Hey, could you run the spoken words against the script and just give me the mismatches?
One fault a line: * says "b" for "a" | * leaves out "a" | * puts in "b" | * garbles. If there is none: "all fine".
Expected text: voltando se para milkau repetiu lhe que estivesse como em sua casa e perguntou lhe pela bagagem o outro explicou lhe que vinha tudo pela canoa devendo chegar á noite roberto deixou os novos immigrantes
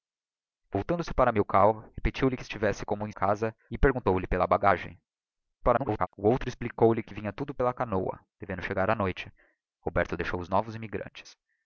* leaves out "sua"
* garbles